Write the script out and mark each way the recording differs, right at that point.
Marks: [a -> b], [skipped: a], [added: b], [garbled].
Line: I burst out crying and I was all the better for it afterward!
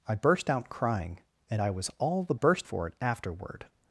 I burst out crying and I was all the [better -> burst] for it afterward!